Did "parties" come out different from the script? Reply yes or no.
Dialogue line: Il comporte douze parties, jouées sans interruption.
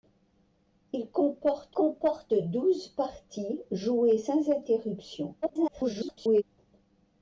no